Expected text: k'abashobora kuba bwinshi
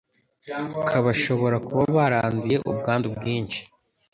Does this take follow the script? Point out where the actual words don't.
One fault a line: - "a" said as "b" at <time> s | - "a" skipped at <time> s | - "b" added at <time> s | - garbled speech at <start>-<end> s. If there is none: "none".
- "baranduye ubwandu" added at 1.9 s